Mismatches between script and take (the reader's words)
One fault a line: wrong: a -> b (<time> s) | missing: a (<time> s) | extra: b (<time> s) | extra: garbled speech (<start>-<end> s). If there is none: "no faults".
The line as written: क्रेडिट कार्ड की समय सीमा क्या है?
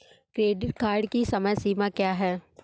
no faults